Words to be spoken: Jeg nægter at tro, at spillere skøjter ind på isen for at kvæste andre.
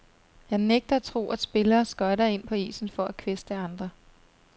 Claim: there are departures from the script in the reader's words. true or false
false